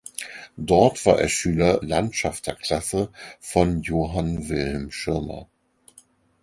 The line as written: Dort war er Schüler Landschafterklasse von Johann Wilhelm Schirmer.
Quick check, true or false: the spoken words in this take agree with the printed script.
true